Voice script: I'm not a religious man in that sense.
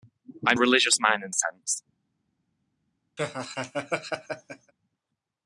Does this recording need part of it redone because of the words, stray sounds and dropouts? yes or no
yes